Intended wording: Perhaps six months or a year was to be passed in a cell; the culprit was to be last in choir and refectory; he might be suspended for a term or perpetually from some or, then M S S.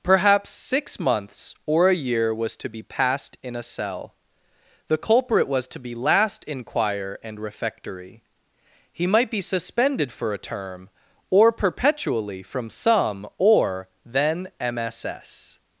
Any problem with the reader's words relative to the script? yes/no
no